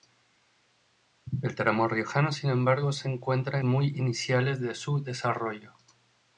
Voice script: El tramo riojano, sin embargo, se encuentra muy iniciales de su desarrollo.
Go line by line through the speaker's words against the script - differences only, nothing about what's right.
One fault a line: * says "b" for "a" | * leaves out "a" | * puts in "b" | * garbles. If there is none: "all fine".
all fine